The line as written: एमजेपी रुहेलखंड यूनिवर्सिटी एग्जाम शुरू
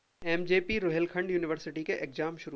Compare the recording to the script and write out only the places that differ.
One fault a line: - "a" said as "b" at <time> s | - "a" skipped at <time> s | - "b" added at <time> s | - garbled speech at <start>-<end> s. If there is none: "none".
- "के" added at 1.8 s